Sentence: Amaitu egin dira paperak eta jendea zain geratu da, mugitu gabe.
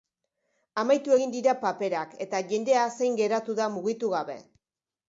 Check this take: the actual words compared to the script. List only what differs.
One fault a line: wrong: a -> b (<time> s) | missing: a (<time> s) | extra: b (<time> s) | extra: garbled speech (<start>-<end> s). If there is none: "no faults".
no faults